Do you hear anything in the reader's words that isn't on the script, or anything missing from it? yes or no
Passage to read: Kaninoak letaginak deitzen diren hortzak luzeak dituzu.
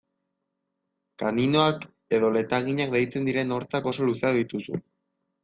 yes